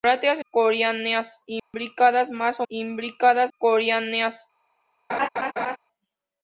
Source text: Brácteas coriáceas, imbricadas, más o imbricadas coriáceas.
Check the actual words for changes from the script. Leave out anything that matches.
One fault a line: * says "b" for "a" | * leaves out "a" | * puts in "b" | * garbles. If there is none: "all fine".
all fine